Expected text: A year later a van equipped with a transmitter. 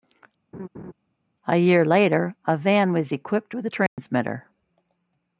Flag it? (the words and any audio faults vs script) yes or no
yes